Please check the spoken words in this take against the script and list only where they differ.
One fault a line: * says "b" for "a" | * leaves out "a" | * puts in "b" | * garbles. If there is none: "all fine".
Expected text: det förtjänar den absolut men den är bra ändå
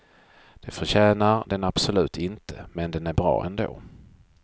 * puts in "inte"